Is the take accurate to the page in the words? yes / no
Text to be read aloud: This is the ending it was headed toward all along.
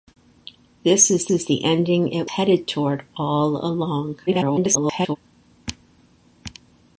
no